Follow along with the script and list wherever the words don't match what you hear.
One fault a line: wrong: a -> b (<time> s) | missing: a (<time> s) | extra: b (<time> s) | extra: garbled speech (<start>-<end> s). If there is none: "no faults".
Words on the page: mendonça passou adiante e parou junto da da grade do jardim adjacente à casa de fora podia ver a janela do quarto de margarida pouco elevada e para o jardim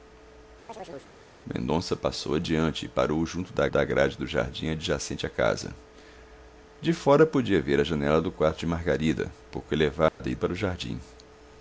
no faults